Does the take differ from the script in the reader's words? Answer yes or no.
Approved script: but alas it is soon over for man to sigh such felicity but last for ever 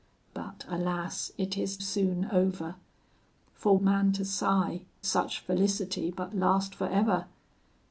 no